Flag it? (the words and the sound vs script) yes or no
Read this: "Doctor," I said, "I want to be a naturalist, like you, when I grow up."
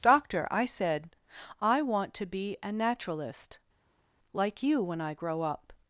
no